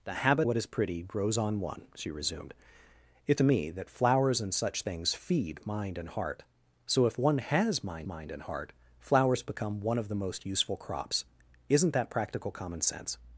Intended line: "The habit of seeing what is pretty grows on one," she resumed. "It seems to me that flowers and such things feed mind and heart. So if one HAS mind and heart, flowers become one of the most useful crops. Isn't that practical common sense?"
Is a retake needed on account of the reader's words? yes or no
yes